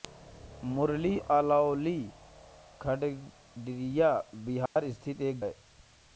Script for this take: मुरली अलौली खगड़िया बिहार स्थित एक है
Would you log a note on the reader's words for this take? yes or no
no